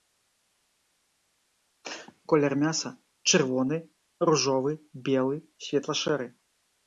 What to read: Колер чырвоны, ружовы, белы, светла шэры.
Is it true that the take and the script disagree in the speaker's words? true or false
true